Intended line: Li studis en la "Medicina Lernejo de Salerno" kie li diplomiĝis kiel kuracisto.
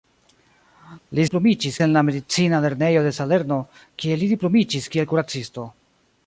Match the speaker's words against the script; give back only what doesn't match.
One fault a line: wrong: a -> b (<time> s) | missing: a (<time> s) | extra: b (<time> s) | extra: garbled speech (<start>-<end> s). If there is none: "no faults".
wrong: studis -> diplomiĝis (1.3 s)